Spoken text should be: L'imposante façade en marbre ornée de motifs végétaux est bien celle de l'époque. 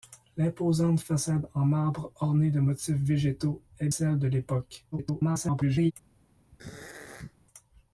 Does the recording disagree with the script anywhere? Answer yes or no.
yes